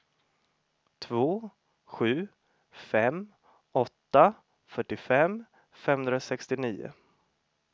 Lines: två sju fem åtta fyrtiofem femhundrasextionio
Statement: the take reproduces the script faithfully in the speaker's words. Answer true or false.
true